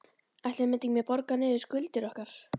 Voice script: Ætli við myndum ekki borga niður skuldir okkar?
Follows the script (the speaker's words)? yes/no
yes